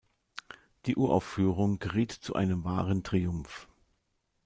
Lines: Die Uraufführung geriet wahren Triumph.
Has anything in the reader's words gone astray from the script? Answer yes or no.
yes